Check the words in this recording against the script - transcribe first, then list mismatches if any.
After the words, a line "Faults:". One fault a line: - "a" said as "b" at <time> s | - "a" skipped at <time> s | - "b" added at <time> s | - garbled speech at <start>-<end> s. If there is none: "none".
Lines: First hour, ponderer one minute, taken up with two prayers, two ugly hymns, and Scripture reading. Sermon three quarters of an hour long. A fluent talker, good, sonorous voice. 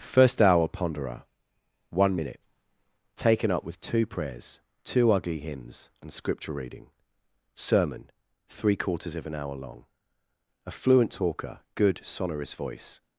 First hour, ponderer one minute, taken up with two prayers, two ugly hymns, and Scripture reading. Sermon three quarters of an hour long. A fluent talker, good, sonorous voice.
Faults:
none